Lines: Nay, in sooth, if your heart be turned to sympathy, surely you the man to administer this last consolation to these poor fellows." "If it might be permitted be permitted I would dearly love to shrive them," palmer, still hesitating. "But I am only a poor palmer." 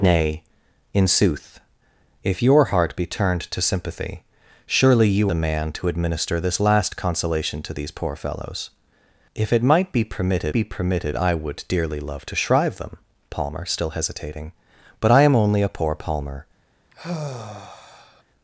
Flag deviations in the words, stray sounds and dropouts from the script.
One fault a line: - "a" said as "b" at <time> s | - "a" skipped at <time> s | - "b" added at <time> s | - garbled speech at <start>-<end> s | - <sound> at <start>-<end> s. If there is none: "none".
- sigh at 16.9-18.2 s